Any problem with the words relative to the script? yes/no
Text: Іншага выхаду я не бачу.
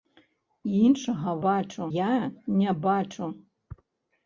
yes